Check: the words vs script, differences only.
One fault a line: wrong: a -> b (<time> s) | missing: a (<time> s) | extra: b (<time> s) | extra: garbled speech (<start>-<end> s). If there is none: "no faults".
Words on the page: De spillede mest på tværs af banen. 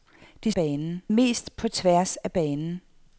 wrong: spillede -> banen (0.5 s)